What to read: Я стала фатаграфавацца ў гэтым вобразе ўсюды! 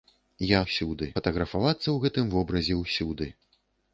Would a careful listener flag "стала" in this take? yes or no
yes